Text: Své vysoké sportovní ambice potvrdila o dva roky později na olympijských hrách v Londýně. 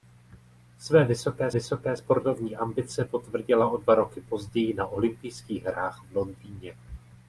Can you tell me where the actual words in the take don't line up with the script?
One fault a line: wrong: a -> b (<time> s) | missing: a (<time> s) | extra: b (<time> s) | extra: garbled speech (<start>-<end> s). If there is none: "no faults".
extra: vysoké (1.5 s)